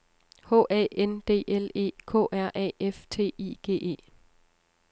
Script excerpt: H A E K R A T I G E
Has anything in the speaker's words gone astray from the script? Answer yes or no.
yes